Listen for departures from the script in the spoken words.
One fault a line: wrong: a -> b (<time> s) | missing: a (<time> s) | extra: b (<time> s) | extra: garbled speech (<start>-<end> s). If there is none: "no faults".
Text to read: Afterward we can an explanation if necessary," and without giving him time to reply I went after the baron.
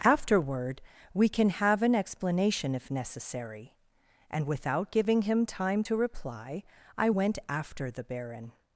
extra: have (1.5 s)